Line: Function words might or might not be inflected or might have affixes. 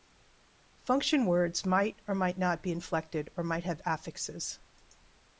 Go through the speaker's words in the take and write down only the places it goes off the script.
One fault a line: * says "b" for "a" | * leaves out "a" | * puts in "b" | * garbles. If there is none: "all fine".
all fine